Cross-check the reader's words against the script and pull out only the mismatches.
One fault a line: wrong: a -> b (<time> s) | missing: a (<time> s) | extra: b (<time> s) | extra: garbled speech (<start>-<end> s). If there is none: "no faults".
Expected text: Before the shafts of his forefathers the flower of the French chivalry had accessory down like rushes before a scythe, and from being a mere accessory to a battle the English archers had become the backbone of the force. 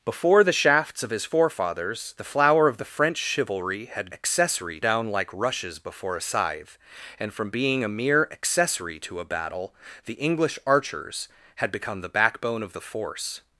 no faults